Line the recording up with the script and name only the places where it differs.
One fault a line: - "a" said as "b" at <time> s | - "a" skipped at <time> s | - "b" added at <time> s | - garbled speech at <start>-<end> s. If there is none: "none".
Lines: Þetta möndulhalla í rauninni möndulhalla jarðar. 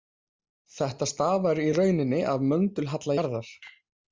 - "möndulhalla" said as "stafar" at 1.1 s
- "af" added at 2.4 s